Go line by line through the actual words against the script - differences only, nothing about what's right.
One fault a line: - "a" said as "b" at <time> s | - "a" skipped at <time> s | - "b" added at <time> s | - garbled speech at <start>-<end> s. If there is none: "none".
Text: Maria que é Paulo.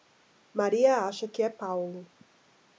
- "acha" added at 1.1 s